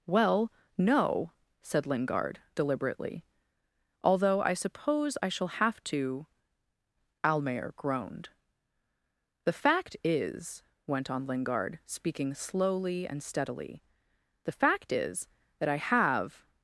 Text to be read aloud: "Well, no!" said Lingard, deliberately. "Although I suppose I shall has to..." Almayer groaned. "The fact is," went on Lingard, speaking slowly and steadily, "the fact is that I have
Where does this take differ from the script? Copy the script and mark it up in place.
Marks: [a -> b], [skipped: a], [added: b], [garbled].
"Well, no!" said Lingard, deliberately. "Although I suppose I shall [has -> have] to..." Almayer groaned. "The fact is," went on Lingard, speaking slowly and steadily, "the fact is that I have